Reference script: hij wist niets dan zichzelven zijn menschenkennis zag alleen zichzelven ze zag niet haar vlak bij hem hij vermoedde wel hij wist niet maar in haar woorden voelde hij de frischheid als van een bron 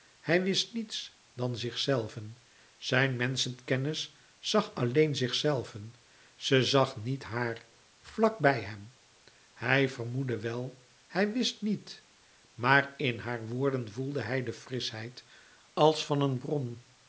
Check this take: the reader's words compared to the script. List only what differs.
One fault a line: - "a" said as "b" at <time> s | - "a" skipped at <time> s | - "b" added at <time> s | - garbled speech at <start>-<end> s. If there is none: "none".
none